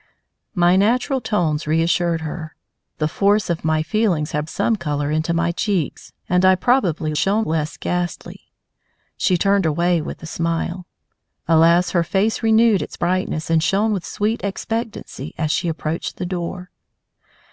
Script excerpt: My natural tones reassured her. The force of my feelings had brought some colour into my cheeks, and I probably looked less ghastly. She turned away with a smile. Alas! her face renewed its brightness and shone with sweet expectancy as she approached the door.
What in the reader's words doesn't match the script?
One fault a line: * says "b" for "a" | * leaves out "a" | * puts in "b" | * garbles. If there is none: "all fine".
* leaves out "brought"
* says "shone" for "looked"